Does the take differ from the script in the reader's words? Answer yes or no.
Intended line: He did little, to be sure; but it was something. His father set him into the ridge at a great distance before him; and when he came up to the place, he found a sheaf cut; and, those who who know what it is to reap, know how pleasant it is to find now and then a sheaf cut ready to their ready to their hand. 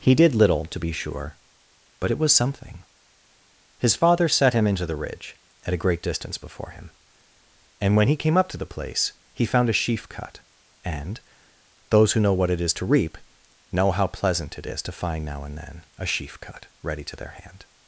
yes